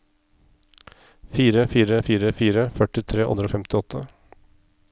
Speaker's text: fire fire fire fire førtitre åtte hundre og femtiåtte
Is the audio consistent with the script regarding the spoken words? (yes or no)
no